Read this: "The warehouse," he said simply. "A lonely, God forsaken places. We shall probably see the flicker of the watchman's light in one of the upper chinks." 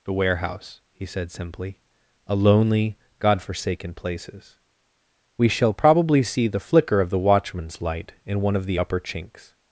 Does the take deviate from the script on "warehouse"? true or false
false